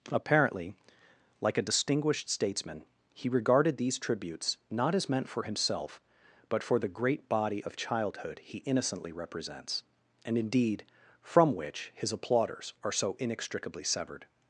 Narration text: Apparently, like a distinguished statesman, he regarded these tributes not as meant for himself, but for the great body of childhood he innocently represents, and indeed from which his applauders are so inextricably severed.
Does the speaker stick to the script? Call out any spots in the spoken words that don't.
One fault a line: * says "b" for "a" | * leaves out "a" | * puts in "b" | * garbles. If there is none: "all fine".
all fine